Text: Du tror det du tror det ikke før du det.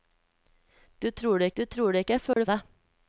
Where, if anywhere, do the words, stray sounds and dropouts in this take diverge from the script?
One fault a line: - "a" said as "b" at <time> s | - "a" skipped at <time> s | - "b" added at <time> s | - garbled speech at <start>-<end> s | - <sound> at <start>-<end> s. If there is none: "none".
- dropout at 2.3-2.4 s